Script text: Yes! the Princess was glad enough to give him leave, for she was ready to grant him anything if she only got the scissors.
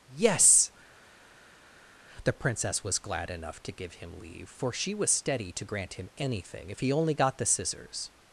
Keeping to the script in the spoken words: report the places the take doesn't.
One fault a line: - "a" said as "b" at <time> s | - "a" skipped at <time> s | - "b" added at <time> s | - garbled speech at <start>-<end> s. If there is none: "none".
- "ready" said as "steady" at 5.1 s
- "she" said as "he" at 6.8 s